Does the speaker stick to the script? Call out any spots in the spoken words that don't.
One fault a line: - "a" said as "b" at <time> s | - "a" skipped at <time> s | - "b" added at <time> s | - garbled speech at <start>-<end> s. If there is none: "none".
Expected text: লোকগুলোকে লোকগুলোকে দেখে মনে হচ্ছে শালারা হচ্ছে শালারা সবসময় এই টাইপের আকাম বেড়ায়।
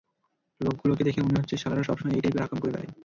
- "লোকগুলোকে" skipped at 1.0 s
- "হচ্ছে শালারা" skipped at 1.8 s
- "করে" added at 2.6 s